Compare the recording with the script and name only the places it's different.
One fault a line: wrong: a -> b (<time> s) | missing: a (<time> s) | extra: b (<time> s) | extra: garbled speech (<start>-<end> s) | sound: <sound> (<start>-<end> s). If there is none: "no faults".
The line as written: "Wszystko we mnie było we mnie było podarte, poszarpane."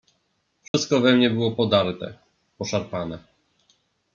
sound: dropout (0.7-0.7 s)
missing: we mnie było (1.5 s)